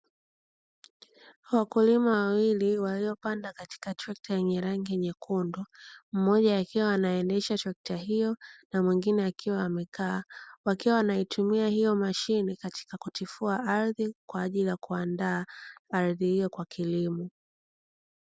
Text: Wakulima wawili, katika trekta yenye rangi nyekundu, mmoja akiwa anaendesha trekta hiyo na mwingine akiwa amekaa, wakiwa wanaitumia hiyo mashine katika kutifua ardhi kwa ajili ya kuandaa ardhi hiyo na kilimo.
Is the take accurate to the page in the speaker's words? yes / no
no